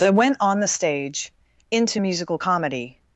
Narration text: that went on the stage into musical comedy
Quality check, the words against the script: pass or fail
pass